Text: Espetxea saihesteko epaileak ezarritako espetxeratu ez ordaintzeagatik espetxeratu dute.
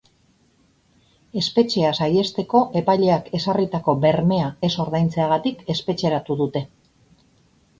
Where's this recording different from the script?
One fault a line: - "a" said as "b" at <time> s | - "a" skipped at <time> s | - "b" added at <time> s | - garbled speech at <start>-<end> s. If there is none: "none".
- "espetxeratu" said as "bermea" at 4.1 s